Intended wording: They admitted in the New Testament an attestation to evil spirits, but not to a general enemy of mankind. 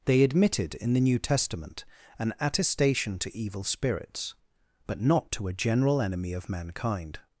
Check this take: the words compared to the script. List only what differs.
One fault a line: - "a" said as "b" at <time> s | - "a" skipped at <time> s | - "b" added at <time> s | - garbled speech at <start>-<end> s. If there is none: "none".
none